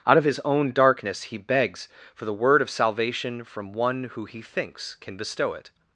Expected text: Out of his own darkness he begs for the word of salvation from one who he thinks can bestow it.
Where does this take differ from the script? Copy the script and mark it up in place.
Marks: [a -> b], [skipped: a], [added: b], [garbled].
Out of his own darkness he begs for the word of salvation from one who he thinks can bestow it.